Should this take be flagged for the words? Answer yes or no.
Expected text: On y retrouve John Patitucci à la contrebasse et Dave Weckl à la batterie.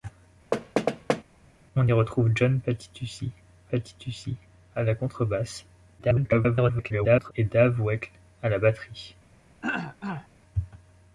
yes